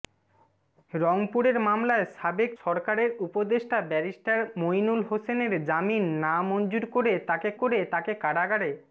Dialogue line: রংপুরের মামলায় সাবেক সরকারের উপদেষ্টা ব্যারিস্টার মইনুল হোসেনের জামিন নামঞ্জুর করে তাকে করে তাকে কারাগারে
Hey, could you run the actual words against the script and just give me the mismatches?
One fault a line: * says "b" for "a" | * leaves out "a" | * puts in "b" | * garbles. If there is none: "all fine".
all fine